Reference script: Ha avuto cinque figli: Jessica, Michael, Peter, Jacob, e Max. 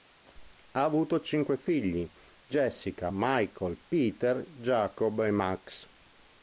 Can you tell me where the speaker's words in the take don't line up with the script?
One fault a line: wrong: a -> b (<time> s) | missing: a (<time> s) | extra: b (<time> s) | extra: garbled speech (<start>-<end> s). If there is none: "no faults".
no faults